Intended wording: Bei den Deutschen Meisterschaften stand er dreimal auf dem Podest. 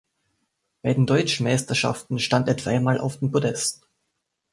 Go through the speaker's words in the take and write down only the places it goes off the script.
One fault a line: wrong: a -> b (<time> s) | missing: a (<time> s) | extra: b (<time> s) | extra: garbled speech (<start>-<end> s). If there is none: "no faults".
no faults